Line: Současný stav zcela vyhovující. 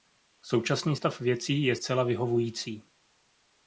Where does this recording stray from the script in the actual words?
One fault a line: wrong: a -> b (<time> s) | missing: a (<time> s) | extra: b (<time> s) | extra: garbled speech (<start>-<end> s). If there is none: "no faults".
extra: věcí je (1.2 s)